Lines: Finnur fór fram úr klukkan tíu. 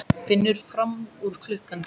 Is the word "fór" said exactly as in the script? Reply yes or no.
no